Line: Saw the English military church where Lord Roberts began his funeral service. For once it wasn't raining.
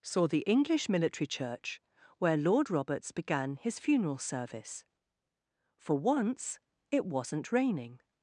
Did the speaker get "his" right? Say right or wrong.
right